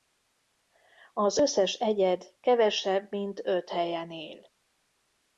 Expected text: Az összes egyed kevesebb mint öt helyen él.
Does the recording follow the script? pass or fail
pass